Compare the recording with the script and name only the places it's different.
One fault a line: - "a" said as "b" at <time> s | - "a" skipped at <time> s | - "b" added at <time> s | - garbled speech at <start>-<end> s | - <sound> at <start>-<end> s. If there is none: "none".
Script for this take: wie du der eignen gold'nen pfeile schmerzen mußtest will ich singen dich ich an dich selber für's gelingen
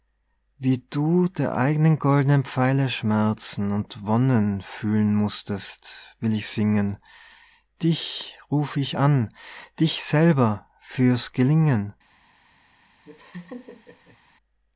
- "und wonnen fühlen" added at 3.7 s
- "ruf" added at 8.5 s
- laugh at 13.0-14.2 s